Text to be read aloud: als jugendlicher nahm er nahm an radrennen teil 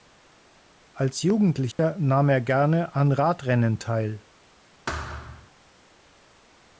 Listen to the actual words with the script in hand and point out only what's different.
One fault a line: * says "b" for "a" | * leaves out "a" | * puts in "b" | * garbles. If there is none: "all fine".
* says "gerne" for "nahm"